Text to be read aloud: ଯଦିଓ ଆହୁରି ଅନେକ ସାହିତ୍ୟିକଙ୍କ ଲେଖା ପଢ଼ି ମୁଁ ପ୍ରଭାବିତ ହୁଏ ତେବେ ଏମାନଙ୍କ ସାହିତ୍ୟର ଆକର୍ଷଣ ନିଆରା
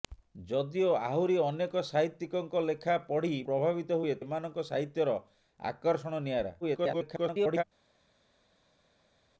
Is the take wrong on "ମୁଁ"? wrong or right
wrong